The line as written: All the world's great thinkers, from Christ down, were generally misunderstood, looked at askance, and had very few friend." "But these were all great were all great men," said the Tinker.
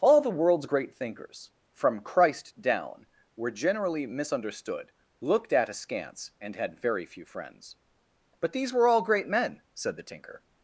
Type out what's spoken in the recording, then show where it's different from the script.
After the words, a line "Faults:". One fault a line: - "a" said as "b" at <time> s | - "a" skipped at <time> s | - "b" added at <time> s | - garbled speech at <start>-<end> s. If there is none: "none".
All the world's great thinkers, from Christ down, were generally misunderstood, looked at askance, and had very few friends." "But these were all great men," said the Tinker.
Faults:
- "friend" said as "friends" at 7.3 s
- "were all great" skipped at 9.3 s